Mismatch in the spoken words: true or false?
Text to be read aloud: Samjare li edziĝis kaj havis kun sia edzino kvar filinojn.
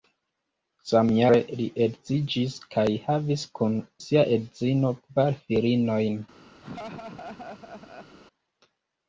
false